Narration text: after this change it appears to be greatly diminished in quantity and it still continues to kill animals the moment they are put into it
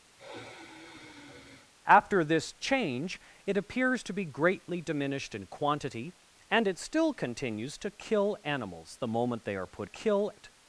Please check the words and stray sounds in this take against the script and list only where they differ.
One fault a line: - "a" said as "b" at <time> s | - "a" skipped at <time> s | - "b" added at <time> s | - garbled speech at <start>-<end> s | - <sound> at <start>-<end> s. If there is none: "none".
- sigh at 0.2-1.7 s
- "into" said as "kill" at 9.8 s